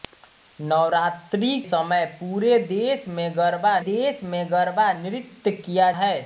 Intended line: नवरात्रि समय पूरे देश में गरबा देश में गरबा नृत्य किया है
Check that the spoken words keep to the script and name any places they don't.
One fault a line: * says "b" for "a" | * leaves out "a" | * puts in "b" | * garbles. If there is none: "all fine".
all fine